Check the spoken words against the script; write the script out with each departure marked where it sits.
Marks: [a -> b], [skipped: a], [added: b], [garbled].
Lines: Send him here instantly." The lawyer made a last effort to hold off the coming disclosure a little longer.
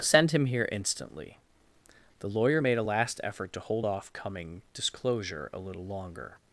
Send him here instantly." The lawyer made a last effort to hold off [skipped: the] coming disclosure a little longer.